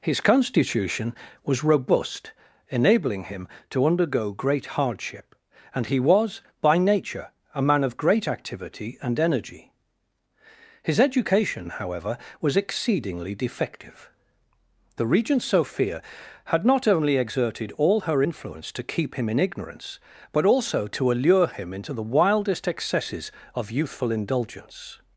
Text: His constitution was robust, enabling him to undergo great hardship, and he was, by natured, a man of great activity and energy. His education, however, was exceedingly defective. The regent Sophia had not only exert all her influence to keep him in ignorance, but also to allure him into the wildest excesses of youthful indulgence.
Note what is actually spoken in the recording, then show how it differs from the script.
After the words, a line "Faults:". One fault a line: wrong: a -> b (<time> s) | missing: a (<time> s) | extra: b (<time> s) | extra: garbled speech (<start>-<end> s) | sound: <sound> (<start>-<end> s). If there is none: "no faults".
His constitution was robust, enabling him to undergo great hardship, and he was, by nature, a man of great activity and energy. His education, however, was exceedingly defective. The regent Sophia had not only exerted all her influence to keep him in ignorance, but also to allure him into the wildest excesses of youthful indulgence.
Faults:
wrong: natured -> nature (6.8 s)
wrong: exert -> exerted (17.2 s)